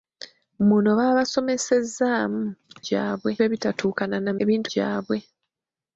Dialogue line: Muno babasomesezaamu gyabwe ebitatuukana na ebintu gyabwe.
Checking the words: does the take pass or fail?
pass